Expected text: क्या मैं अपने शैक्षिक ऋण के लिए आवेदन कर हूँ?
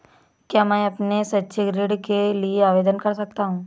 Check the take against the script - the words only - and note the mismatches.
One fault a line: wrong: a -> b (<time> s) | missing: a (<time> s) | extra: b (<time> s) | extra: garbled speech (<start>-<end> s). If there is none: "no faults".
extra: सकता (3.1 s)